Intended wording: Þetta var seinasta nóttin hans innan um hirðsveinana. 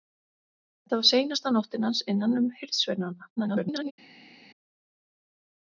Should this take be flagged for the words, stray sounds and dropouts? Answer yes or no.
yes